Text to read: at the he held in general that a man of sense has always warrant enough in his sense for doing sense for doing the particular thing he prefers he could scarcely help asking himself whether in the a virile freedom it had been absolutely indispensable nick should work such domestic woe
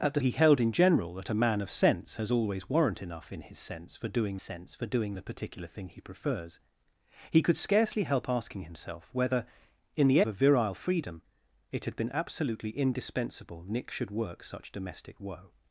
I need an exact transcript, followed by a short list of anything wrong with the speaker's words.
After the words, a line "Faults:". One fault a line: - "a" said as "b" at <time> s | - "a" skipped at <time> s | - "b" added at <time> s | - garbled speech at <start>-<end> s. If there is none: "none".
at the he held in general that a man of sense has always warrant enough in his sense for doing sense for doing the particular thing he prefers he could scarcely help asking himself whether in the a virile freedom it had been absolutely indispensable nick should work such domestic woe
Faults:
none